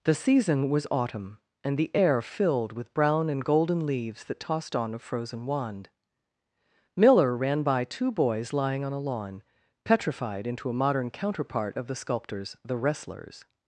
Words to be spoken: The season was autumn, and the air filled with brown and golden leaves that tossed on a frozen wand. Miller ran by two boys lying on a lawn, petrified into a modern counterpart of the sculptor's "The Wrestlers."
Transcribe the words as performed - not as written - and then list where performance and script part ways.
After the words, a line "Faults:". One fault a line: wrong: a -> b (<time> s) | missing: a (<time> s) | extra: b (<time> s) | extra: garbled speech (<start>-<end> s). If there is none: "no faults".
The season was autumn, and the air filled with brown and golden leaves that tossed on a frozen wand. Miller ran by two boys lying on a lawn, petrified into a modern counterpart of the sculptor's "The Wrestlers."
Faults:
no faults